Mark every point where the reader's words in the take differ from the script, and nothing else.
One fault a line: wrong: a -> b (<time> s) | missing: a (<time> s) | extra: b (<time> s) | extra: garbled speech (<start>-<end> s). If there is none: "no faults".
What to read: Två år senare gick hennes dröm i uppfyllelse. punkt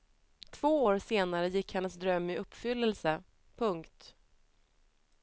no faults